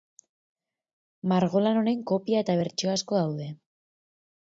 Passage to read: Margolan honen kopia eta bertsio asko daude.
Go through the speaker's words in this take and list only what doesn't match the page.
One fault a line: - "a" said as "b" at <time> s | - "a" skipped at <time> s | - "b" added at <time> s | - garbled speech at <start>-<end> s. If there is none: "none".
none